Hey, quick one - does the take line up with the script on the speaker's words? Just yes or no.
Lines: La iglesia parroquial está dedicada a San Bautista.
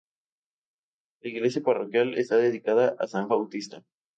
yes